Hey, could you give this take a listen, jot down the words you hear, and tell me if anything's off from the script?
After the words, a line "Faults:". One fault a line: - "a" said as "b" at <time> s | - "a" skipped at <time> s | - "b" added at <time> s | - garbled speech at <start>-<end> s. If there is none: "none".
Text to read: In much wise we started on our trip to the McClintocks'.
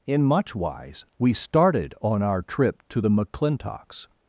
In much wise we started on our trip to the McClintocks'.
Faults:
none